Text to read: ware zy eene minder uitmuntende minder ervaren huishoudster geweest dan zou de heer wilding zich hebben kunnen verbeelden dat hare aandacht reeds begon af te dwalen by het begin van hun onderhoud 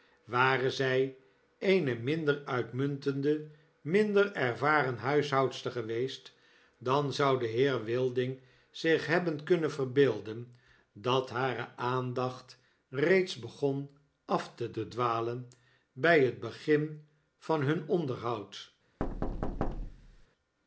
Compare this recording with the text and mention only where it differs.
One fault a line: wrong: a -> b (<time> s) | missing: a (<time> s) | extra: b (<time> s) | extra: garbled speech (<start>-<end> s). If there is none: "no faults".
extra: te (14.7 s)